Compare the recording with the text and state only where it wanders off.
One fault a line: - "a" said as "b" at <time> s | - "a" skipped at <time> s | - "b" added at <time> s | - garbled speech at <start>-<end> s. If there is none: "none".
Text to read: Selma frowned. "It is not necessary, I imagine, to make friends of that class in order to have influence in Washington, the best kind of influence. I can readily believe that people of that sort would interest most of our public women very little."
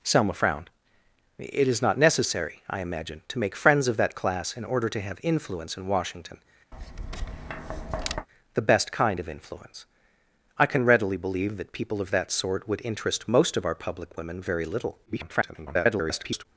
- garbled speech at 15.1-16.5 s